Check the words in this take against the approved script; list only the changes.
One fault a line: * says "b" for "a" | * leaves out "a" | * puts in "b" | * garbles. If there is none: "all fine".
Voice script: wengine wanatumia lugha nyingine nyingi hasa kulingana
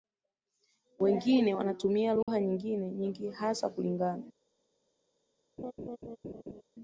all fine